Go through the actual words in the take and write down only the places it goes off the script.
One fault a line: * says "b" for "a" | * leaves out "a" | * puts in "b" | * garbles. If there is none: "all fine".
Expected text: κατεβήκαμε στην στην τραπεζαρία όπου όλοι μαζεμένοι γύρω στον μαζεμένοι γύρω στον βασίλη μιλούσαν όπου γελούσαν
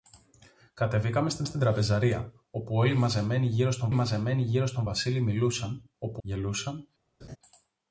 all fine